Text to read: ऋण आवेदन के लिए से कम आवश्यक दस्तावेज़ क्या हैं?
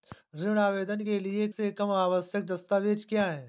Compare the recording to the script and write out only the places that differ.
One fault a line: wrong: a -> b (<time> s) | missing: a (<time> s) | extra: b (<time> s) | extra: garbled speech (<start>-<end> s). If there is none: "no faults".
no faults